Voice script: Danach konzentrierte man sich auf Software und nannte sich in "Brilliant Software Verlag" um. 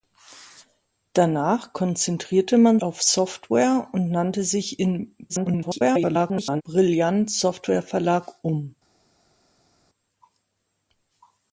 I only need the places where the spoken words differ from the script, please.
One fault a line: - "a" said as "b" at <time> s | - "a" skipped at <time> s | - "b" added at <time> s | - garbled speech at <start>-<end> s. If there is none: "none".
- "sich" skipped at 2.8 s
- garbled speech at 5.3-6.6 s